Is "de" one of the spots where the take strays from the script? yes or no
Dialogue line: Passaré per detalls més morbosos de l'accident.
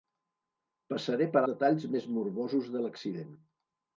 no